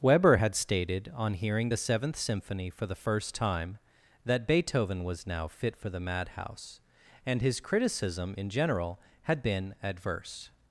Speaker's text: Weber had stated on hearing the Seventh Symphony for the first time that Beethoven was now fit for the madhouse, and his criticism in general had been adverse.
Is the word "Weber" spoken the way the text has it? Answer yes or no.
yes